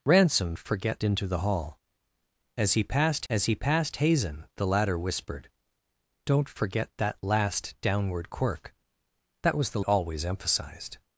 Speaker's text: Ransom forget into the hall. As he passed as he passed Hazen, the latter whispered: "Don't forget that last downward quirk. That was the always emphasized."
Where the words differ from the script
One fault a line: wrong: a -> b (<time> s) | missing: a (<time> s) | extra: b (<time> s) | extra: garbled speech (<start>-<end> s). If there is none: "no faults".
no faults